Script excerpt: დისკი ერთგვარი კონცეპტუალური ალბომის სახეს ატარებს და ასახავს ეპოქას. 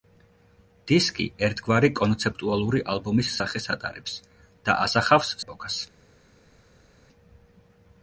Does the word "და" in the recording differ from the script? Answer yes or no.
no